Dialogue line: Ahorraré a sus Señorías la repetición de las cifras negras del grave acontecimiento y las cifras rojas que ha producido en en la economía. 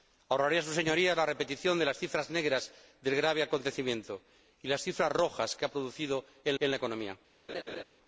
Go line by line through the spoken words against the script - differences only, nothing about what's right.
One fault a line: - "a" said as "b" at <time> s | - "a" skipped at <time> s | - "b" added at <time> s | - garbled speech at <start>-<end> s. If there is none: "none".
none